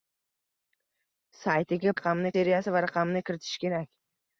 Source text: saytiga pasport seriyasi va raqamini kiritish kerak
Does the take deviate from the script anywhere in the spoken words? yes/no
yes